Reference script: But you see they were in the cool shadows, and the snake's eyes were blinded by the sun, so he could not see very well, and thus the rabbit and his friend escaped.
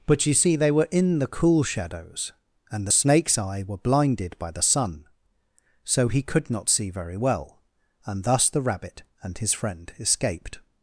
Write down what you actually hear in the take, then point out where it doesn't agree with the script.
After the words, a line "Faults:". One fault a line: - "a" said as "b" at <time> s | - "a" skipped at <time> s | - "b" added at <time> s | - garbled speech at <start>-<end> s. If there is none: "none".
But you see they were in the cool shadows, and the snake's eye were blinded by the sun, so he could not see very well, and thus the rabbit and his friend escaped.
Faults:
- "eyes" said as "eye" at 3.4 s